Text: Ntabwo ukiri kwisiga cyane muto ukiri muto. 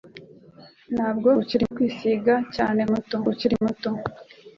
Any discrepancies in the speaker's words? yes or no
no